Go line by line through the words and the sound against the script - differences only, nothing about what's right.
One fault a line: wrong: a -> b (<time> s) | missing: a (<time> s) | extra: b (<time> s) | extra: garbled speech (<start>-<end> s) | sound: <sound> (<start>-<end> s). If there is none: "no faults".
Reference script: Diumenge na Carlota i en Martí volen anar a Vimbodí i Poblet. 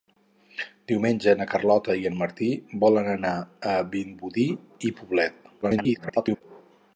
extra: garbled speech (5.6-6.4 s)